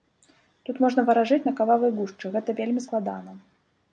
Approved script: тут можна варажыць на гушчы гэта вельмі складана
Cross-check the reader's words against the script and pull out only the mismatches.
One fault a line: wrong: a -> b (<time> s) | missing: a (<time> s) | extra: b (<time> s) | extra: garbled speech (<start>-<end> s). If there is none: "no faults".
extra: кававай (1.6 s)